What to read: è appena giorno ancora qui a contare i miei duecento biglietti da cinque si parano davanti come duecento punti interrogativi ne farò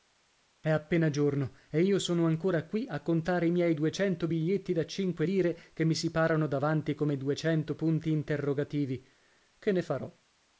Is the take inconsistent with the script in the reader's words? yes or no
yes